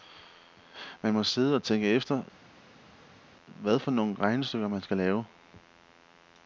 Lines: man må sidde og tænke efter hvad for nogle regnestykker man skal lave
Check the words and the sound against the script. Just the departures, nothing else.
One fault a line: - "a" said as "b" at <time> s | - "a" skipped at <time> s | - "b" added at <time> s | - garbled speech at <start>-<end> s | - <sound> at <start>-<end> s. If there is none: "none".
none